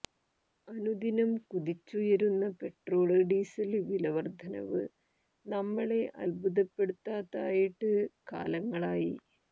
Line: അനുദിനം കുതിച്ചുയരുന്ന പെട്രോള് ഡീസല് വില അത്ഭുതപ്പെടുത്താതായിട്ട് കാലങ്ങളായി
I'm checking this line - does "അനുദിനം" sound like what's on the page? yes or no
yes